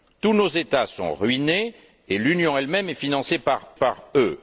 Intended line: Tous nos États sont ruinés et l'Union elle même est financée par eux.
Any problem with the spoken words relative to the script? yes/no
yes